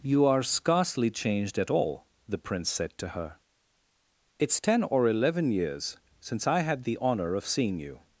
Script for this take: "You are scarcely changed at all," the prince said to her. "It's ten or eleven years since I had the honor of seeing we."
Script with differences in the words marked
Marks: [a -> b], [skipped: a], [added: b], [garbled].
"You are scarcely changed at all," the prince said to her. "It's ten or eleven years since I had the honor of seeing [we." -> you]